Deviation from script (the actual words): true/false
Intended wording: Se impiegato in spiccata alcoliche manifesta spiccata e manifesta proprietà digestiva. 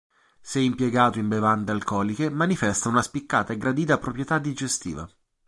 true